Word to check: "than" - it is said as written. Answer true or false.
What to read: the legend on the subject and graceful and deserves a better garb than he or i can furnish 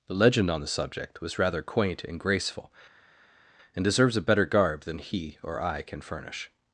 true